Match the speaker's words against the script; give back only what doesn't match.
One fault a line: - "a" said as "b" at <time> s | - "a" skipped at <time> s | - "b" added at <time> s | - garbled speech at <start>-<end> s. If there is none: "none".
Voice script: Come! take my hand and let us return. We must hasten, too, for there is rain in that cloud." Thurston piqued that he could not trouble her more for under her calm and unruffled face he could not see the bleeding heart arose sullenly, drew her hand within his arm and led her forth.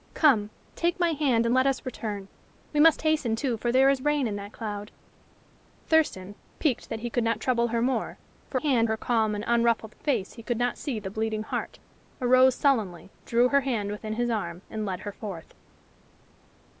- "under" said as "hand" at 8.5 s